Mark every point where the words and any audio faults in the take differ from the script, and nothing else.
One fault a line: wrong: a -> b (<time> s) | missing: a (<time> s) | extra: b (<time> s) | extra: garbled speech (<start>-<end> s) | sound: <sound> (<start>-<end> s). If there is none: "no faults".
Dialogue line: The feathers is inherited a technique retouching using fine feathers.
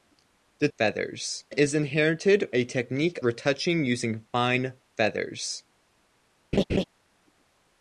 sound: laugh (6.5-6.8 s)